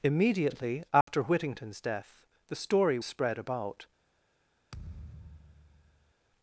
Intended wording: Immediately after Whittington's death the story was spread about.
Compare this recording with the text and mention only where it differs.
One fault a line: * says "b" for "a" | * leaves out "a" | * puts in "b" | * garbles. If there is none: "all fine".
* leaves out "was"